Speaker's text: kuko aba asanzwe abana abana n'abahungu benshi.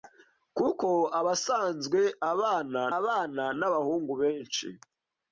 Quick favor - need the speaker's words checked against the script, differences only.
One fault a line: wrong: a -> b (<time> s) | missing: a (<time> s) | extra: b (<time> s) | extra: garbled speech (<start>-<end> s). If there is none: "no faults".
no faults